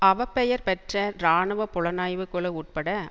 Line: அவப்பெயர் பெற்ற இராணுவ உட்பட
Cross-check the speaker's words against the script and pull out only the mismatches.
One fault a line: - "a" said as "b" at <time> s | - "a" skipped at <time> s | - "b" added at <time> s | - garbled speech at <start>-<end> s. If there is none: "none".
- "புலனாய்வு குழு" added at 1.7 s